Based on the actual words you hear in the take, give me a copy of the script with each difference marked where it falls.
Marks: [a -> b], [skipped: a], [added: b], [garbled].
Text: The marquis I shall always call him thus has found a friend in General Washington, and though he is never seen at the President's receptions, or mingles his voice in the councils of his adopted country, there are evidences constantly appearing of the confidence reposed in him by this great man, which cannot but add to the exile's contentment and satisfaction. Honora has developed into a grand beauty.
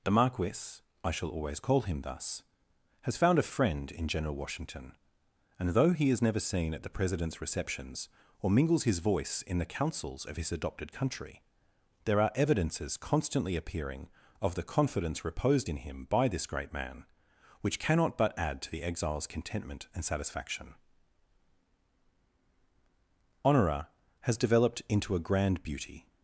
The marquis I shall always call him thus has found a friend in General Washington, and though he is never seen at the President's receptions, or mingles his voice in the councils of his adopted country, there are evidences constantly appearing of the confidence reposed in him by this great man, which cannot but add to the exile's contentment and satisfaction. Honora has developed into a grand beauty.